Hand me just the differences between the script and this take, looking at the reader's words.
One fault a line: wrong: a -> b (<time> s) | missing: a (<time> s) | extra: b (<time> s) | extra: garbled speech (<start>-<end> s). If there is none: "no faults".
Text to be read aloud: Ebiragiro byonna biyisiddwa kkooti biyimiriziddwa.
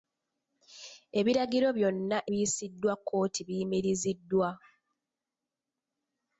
no faults